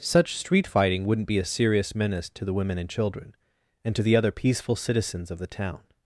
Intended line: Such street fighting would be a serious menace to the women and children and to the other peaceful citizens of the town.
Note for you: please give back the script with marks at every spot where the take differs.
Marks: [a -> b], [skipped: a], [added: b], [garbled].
Such street fighting [would -> wouldn't] be a serious menace to the women and children and to the other peaceful citizens of the town.